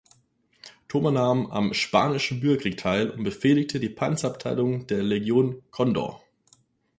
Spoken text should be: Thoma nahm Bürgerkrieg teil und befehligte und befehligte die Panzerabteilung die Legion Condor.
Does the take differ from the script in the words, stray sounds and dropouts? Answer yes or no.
yes